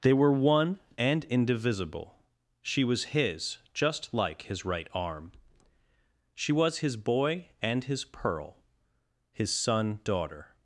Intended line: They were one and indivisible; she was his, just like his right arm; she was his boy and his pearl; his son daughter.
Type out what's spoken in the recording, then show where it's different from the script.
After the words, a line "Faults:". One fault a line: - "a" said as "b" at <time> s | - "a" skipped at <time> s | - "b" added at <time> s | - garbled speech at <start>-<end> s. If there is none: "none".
They were one and indivisible; she was his, just like his right arm; she was his boy and his pearl; his son daughter.
Faults:
none